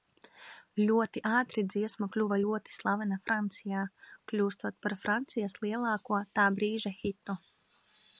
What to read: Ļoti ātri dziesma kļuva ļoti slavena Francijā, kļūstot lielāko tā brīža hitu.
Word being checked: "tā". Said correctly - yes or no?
yes